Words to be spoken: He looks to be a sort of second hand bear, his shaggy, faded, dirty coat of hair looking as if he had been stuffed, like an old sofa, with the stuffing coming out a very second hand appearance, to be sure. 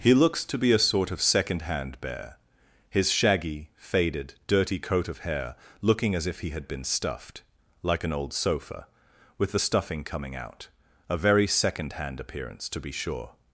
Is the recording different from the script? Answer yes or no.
no